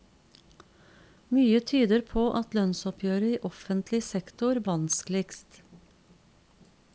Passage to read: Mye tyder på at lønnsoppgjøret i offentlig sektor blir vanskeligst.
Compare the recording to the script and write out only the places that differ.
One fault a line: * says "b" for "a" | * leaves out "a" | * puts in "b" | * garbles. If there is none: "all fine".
* leaves out "blir"